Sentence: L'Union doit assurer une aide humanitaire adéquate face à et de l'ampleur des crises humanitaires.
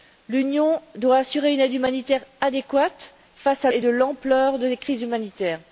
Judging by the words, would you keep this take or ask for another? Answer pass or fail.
pass